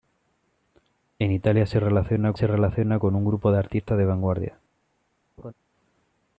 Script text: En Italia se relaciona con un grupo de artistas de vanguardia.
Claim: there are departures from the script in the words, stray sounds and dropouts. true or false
true